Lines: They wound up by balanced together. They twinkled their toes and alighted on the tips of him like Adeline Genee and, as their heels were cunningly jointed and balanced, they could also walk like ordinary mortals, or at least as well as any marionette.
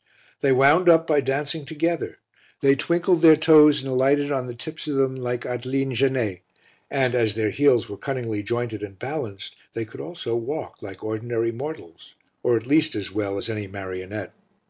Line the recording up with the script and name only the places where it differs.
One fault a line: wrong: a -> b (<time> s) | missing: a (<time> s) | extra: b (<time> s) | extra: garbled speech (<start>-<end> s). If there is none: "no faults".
wrong: balanced -> dancing (1.2 s)
wrong: him -> them (5.0 s)